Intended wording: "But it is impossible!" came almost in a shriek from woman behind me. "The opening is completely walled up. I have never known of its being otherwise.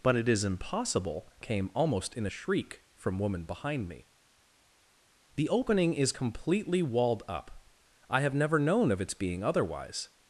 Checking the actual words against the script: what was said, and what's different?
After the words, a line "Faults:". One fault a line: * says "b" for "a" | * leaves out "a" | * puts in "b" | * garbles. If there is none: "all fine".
"But it is impossible!" came almost in a shriek from woman behind me. "The opening is completely walled up. I have never known of its being otherwise.
Faults:
all fine